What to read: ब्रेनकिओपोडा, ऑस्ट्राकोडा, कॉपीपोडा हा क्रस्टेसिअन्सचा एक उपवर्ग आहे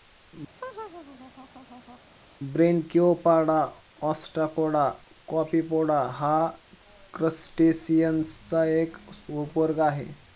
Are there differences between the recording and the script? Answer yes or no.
no